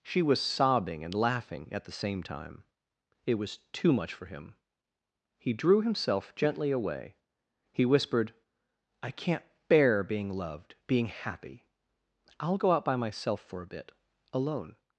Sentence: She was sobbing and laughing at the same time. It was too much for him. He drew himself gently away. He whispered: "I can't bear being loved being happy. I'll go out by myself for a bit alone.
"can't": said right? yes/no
yes